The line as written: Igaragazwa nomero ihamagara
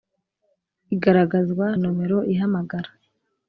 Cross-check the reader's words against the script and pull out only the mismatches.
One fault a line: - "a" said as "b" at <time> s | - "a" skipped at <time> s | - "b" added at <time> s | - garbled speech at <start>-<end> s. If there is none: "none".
none